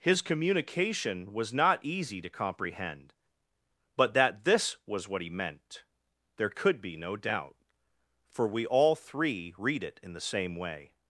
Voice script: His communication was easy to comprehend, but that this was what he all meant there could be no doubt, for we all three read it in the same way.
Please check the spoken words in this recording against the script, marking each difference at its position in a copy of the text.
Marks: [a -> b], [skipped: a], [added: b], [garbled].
His communication was [added: not] easy to comprehend, but that this was what he [skipped: all] meant there could be no doubt, for we all three read it in the same way.